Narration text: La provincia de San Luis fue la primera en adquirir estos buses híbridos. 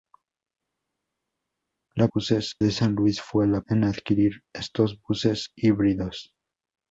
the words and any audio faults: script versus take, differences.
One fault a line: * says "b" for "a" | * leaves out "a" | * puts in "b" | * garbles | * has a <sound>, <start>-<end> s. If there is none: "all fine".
* says "buses" for "provincia"
* leaves out "primera"